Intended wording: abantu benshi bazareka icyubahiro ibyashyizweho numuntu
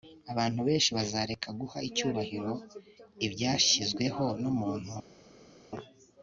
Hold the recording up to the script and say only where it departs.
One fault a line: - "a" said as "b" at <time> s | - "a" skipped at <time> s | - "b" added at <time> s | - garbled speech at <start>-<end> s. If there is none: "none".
- "guha" added at 1.6 s